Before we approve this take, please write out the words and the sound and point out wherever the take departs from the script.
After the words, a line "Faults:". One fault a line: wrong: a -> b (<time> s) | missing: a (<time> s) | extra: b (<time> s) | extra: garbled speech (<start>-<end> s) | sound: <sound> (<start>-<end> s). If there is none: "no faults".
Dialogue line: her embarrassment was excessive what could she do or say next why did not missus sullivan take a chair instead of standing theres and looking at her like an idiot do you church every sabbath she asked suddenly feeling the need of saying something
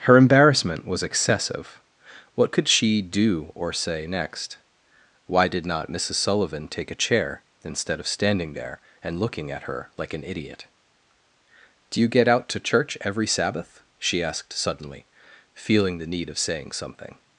her embarrassment was excessive what could she do or say next why did not missus sullivan take a chair instead of standing there and looking at her like an idiot do you get out to church every sabbath she asked suddenly feeling the need of saying something
Faults:
wrong: theres -> there (8.5 s)
extra: get out to (12.1 s)